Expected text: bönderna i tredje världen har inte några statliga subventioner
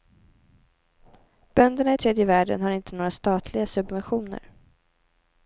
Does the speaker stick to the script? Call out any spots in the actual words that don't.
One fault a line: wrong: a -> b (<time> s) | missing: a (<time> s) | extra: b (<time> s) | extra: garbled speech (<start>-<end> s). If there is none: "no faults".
no faults